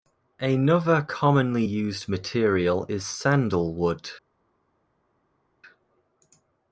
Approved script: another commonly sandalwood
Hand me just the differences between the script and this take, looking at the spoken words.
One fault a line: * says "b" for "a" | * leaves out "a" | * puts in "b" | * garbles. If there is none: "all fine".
* puts in "used material is"